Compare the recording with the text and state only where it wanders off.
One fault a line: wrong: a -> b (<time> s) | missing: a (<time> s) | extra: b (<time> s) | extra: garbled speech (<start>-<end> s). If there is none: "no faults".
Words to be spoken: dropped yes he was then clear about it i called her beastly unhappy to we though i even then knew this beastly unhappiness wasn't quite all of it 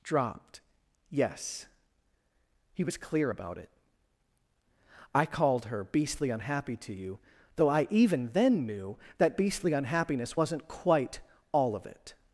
missing: then (3.0 s)
wrong: we -> you (6.9 s)
wrong: this -> that (9.2 s)